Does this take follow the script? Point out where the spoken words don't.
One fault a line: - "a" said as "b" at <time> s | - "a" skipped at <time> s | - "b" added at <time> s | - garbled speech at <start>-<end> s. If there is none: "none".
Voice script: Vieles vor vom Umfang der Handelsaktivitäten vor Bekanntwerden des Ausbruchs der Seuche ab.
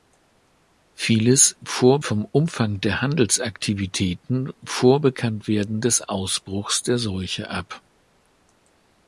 none